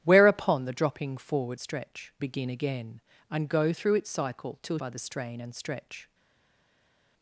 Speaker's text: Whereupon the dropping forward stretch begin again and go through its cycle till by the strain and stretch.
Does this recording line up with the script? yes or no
yes